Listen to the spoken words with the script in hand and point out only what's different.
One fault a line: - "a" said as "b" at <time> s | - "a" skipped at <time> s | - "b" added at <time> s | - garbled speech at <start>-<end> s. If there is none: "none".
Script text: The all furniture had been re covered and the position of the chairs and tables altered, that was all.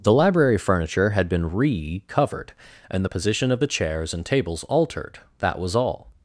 - "all" said as "library" at 0.1 s